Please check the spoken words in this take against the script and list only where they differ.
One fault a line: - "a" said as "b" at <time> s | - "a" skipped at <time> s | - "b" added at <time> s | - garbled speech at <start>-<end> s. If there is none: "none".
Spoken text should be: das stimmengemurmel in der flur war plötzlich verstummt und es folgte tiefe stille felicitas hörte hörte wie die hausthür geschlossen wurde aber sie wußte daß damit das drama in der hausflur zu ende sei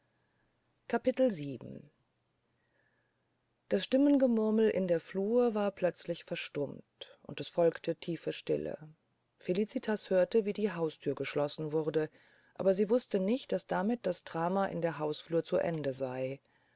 - "hörte" skipped at 10.5 s
- "nicht" added at 13.2 s